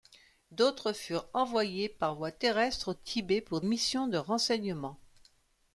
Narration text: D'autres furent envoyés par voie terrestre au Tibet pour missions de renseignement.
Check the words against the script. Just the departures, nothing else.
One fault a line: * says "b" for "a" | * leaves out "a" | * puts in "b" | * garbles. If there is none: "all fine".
all fine